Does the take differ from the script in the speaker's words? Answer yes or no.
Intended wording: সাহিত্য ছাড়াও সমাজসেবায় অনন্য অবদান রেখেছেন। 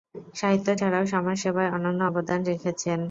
no